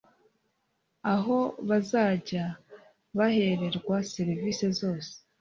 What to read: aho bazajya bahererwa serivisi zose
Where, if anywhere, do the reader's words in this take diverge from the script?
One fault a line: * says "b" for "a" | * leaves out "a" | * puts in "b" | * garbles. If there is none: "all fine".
all fine